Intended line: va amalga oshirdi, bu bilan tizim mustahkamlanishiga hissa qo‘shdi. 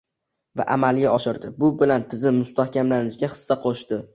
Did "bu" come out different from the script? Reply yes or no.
no